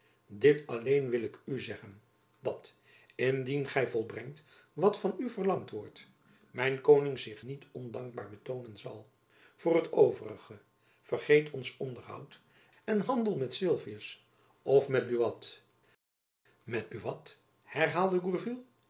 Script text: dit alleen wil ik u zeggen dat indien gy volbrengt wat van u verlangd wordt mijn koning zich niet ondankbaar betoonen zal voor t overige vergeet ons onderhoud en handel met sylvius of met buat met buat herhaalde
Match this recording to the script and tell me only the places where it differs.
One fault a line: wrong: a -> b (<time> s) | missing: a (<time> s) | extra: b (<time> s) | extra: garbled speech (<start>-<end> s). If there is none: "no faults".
no faults